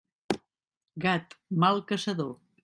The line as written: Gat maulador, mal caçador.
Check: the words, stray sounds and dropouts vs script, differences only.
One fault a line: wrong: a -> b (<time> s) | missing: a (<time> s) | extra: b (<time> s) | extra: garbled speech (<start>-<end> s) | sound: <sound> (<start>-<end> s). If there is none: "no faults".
missing: maulador (1.4 s)